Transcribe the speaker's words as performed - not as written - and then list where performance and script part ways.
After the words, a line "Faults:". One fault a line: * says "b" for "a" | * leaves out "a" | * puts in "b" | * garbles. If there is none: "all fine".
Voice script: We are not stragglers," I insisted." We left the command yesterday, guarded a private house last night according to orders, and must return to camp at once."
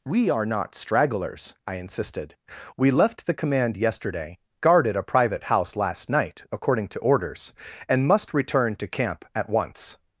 We are not stragglers," I insisted." We left the command yesterday, guarded a private house last night according to orders, and must return to camp at once."
Faults:
all fine